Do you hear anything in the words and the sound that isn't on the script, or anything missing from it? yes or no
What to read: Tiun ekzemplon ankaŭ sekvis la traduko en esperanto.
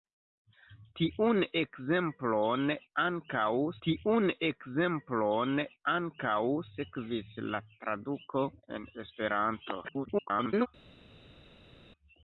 yes